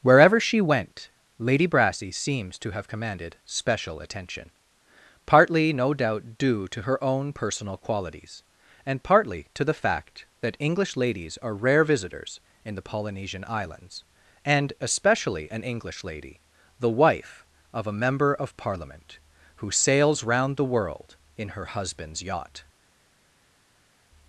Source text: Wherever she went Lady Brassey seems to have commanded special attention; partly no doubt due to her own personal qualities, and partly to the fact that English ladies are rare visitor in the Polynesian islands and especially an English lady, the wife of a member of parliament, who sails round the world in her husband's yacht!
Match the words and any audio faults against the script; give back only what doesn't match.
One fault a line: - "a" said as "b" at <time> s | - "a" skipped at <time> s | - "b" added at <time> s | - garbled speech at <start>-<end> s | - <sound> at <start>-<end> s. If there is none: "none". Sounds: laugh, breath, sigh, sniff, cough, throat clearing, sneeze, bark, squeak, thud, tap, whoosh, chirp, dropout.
- "visitor" said as "visitors" at 11.8 s